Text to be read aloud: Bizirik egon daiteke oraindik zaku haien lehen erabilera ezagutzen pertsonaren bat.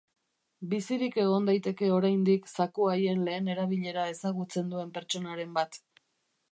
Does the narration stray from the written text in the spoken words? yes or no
yes